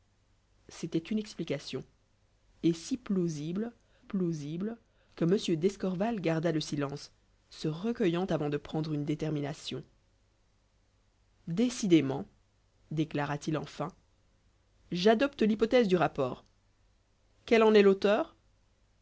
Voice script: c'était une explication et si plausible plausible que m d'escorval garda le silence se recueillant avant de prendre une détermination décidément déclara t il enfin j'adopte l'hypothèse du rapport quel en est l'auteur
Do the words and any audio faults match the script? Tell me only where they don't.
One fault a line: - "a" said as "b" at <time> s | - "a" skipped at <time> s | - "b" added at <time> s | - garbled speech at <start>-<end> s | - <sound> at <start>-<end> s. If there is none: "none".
none